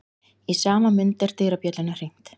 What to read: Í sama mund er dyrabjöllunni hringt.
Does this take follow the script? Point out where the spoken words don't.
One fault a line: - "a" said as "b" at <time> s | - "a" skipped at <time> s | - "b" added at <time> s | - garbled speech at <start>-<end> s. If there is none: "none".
none